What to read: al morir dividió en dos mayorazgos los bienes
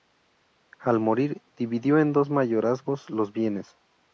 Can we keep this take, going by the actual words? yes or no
yes